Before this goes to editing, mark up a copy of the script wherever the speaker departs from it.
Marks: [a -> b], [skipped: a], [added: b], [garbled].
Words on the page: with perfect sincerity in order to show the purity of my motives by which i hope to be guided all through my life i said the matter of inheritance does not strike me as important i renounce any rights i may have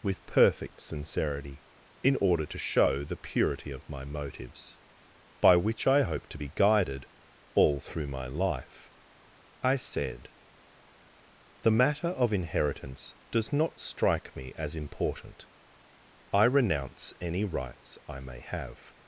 with perfect sincerity in order to show the purity of my motives by which i hope to be guided all through my life i said the matter of inheritance does not strike me as important i renounce any rights i may have